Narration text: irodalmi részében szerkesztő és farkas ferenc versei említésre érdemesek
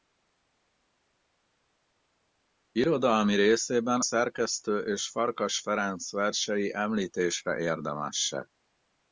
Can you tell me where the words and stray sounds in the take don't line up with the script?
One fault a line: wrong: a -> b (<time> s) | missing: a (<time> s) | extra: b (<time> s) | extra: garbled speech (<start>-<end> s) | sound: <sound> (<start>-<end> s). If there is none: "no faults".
no faults